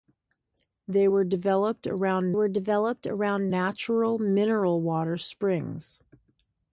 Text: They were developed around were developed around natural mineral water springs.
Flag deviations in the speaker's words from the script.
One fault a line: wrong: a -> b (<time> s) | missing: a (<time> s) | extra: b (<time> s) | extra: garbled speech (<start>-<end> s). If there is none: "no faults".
no faults